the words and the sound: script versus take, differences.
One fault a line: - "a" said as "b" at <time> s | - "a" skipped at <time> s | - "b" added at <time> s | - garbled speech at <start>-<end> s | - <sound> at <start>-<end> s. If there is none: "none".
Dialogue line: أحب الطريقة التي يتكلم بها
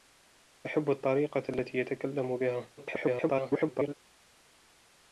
- garbled speech at 2.8-3.9 s